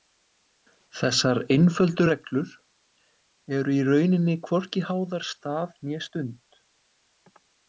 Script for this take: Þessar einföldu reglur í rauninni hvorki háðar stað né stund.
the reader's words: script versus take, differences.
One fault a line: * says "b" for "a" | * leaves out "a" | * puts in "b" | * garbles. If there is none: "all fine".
* puts in "eru"